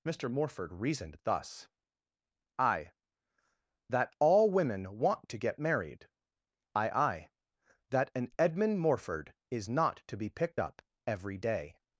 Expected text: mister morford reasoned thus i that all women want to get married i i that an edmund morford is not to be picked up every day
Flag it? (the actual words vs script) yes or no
no